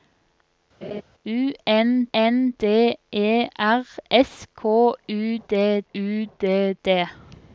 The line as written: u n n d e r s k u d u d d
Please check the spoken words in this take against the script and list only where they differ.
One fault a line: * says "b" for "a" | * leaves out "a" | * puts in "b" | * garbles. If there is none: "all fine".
all fine